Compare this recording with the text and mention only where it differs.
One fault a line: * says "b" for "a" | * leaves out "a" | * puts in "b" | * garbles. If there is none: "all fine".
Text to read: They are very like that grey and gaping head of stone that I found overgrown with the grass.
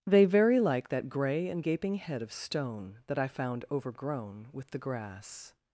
* leaves out "are"